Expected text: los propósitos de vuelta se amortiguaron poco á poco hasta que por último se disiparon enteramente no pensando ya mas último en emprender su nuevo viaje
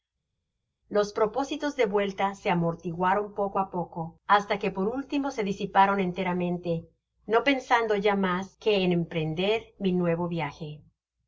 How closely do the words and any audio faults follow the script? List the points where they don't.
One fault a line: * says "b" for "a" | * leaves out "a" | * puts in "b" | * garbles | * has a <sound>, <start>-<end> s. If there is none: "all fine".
* says "que" for "último"
* says "mi" for "su"